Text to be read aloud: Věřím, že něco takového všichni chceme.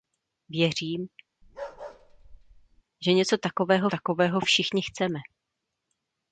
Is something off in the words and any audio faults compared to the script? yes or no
yes